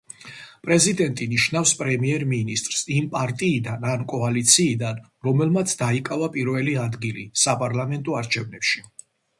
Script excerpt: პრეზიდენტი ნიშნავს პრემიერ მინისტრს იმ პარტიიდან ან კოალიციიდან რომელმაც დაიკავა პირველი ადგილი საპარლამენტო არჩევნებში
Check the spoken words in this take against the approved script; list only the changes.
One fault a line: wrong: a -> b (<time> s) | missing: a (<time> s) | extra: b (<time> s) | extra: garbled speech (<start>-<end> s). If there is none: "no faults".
no faults